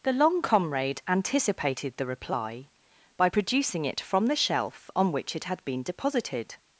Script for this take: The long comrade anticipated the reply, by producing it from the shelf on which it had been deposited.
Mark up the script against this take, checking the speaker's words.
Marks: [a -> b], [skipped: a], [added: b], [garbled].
The long comrade anticipated the reply, by producing it from the shelf on which it had been deposited.